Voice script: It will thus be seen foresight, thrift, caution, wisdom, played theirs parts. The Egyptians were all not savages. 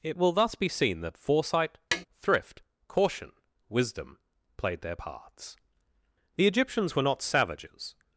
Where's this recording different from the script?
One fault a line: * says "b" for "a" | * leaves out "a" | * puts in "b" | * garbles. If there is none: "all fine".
* puts in "that"
* says "their" for "theirs"
* leaves out "all"